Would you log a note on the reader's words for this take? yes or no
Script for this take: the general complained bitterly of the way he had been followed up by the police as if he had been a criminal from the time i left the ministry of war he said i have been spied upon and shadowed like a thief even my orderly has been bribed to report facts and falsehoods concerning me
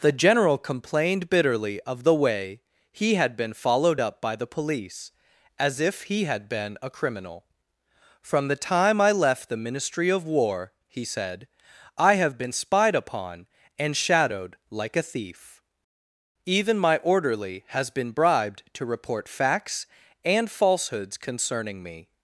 no